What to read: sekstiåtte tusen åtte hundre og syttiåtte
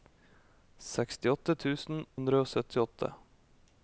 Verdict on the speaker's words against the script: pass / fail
fail